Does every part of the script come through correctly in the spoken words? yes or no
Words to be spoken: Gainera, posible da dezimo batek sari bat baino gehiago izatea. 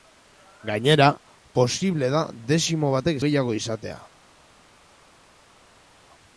no